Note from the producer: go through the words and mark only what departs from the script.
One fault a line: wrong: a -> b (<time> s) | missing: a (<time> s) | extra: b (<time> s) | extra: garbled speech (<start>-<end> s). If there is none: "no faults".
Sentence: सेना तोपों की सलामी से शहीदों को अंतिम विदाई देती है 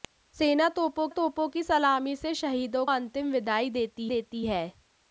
extra: तोपों (1.1 s)
missing: को (2.8 s)
extra: देती (4.0 s)